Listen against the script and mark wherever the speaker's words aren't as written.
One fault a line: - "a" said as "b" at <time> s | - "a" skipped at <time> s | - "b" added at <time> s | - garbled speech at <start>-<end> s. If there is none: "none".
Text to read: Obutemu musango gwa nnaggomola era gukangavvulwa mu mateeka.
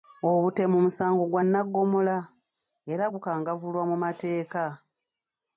none